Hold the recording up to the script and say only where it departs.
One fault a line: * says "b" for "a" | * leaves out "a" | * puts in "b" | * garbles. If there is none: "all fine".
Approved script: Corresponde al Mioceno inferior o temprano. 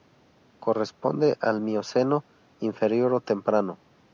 all fine